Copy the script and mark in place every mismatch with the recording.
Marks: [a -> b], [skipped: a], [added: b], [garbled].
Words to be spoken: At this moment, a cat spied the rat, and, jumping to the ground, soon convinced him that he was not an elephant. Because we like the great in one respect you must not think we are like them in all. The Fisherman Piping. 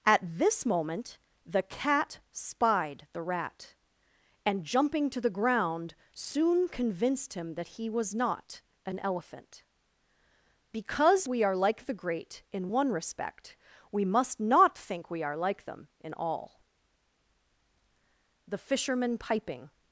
At this moment, [a -> the] cat spied the rat, and, jumping to the ground, soon convinced him that he was not an elephant. Because we [added: are] like the great in one respect [you -> we] must not think we are like them in all. The Fisherman Piping.